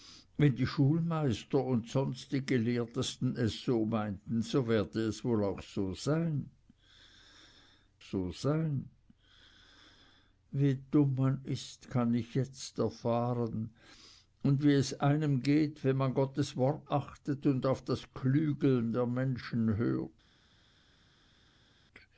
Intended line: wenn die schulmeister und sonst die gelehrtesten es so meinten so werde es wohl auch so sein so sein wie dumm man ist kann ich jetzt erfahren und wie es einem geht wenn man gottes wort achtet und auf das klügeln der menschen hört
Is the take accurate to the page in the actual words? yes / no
yes